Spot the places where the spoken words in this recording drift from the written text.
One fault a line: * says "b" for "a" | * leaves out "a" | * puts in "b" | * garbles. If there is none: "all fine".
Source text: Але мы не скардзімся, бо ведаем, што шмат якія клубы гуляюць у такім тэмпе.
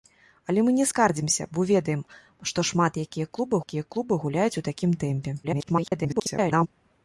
* puts in "якія клубы"
* garbles